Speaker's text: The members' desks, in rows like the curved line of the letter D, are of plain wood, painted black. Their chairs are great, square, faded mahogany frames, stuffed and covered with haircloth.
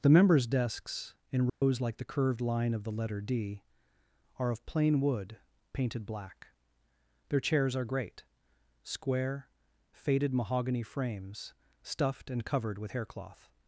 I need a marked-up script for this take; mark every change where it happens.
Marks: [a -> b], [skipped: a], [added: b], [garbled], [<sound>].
The members' desks, in rows [dropout] like the curved line of the letter D, are of plain wood, painted black. Their chairs are great, square, faded mahogany frames, stuffed and covered with haircloth.